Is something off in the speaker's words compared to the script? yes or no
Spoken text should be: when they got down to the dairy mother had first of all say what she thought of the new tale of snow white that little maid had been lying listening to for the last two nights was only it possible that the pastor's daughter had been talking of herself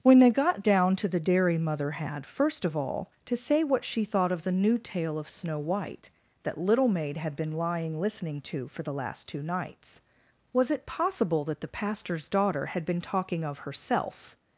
yes